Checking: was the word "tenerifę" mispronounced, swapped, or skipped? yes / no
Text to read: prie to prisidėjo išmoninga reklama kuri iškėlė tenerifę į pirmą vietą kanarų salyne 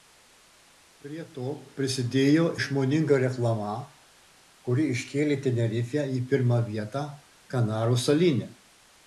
no